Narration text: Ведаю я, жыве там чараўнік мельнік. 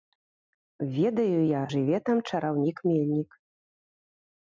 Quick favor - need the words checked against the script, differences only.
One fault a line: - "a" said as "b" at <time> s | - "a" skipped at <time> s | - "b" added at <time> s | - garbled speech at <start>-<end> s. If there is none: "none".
none